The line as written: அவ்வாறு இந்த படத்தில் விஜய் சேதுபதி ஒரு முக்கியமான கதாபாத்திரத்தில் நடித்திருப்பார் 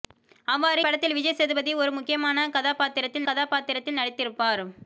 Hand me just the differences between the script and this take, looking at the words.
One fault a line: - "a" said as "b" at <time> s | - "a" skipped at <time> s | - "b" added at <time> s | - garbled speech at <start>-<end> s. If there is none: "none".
- "இந்த" skipped at 0.8 s
- "கதாபாத்திரத்தில்" added at 3.2 s